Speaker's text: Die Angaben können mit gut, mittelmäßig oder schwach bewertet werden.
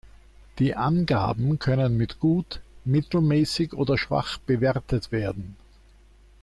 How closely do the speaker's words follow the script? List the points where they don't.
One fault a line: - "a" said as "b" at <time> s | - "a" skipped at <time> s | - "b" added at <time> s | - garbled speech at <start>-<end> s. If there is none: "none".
none